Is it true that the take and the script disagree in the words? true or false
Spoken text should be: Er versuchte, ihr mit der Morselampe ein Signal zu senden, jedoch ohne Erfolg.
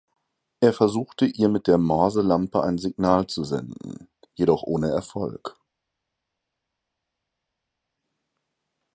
false